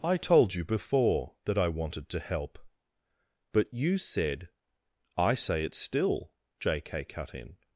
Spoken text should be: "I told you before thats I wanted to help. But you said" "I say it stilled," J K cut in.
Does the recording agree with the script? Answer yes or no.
no